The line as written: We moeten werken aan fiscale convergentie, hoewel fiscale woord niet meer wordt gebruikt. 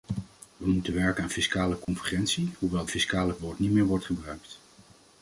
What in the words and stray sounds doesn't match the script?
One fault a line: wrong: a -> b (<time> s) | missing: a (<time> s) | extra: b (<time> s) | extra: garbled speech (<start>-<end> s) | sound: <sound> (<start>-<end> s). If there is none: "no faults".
sound: dropout (1.8-1.9 s)